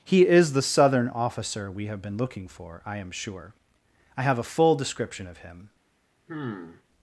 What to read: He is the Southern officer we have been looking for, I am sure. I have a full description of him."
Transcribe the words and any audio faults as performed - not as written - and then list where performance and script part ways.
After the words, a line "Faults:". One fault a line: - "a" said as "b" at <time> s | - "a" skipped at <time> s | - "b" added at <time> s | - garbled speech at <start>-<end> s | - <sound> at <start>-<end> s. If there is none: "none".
He is the Southern officer we have been looking for, I am sure. I have a full description of him."
Faults:
- sigh at 6.3-6.8 s